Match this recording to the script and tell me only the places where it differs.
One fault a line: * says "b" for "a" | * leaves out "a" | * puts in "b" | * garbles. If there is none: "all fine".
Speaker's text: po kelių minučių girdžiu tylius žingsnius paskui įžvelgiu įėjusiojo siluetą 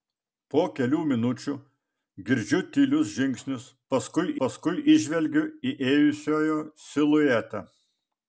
* puts in "paskui"